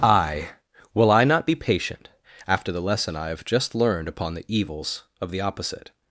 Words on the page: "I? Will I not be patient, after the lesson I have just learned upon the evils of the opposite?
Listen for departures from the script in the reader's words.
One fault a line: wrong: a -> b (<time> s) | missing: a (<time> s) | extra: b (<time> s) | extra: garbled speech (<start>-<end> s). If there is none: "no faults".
no faults